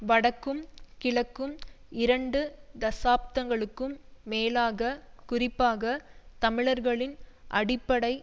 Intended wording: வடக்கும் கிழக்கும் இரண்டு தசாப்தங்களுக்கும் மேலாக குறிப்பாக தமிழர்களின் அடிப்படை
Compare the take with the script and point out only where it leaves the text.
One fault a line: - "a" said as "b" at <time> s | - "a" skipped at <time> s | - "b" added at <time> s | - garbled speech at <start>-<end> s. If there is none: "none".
none